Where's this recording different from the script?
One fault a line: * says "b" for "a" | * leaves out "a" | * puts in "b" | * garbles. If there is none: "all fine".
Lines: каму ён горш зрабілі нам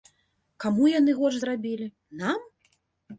* says "яны" for "ён"